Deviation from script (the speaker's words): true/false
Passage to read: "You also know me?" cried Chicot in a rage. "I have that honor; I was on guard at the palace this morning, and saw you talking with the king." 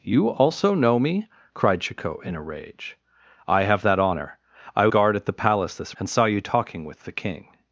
true